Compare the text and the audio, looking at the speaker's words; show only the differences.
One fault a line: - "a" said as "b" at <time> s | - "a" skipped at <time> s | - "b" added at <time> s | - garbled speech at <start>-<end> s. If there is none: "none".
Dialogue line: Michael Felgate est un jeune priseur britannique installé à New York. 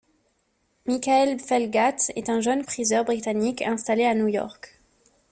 none